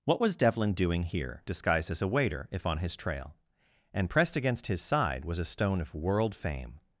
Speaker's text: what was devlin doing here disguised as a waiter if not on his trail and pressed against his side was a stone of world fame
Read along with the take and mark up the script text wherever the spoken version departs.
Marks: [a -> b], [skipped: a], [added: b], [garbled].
what was devlin doing here disguised as a waiter if [skipped: not] on his trail and pressed against his side was a stone of world fame